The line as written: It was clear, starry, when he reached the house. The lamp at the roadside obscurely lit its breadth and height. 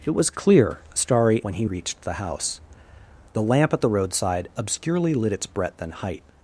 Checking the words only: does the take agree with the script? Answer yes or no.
yes